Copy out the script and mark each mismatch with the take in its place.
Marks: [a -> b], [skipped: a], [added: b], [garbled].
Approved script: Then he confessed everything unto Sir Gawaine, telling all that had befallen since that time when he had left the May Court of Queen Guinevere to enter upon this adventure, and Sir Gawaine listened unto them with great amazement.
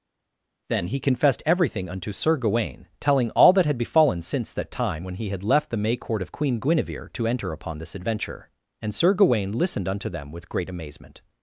Then he confessed everything unto Sir Gawaine, telling all that had befallen since that time when he had left the May Court of Queen Guinevere to enter upon this adventure, and Sir Gawaine listened unto them with great amazement.